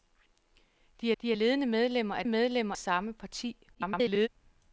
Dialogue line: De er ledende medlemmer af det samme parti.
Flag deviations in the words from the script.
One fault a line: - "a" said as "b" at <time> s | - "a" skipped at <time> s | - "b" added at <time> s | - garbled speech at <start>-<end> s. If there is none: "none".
- "de" added at 1.2 s
- "det" said as "medlemmer" at 2.3 s
- garbled speech at 3.7-4.3 s